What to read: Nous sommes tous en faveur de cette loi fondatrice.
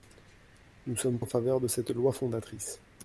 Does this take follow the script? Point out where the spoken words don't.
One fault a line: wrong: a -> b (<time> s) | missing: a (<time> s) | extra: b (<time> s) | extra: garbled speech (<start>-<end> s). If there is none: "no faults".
missing: tous (1.2 s)